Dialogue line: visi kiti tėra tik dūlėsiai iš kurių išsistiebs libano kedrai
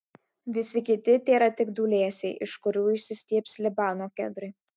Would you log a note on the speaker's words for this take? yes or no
no